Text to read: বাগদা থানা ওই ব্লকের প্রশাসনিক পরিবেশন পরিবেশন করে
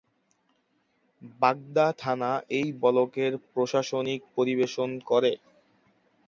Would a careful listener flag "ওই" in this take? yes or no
yes